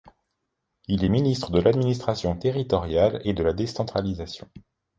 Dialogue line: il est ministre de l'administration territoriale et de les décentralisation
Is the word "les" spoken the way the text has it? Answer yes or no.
no